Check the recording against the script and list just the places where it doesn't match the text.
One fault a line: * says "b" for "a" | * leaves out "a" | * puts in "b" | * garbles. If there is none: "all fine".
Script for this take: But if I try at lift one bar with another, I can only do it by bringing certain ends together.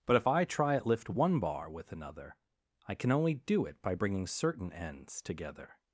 all fine